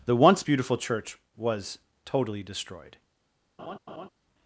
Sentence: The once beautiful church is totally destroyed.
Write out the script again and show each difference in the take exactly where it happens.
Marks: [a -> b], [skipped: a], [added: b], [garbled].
The once beautiful church [is -> was] totally destroyed.